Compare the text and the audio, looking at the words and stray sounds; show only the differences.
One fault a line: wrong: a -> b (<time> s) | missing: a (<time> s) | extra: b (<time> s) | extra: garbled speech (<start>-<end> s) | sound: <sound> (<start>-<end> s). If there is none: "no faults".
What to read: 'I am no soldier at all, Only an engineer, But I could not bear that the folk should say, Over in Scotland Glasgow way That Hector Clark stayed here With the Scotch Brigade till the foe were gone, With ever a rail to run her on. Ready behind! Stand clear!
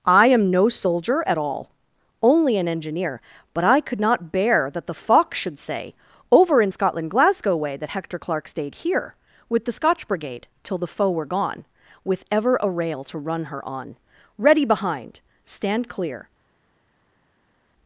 wrong: folk -> fox (4.9 s)